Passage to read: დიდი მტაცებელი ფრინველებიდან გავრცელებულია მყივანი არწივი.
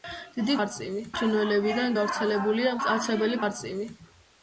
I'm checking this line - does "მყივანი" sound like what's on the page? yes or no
no